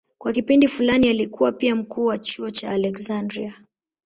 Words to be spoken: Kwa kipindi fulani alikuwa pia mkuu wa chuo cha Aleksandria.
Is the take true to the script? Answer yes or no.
yes